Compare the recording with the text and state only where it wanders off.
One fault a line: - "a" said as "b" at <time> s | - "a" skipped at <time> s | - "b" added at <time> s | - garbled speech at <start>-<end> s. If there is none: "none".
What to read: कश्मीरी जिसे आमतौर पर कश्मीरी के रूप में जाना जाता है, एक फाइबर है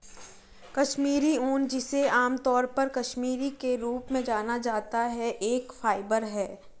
- "ऊन" added at 1.3 s